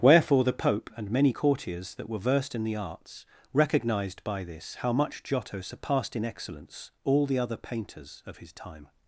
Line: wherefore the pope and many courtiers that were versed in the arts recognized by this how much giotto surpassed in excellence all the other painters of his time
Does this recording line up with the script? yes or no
yes